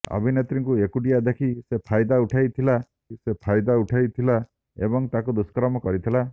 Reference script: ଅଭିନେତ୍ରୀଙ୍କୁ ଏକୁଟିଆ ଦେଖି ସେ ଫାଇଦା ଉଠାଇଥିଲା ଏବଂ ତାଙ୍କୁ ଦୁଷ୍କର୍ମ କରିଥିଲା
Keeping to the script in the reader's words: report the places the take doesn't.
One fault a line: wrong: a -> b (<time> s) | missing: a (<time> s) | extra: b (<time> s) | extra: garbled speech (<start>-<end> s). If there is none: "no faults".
extra: ସେ ଫାଇଦା ଉଠାଇଥିଲା (3.2 s)